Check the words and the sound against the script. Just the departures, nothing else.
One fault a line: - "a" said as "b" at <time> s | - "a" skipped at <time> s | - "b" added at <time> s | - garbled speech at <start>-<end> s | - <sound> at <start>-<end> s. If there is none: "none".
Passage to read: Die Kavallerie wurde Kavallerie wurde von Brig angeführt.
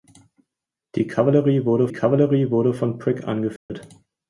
- dropout at 3.6-3.7 s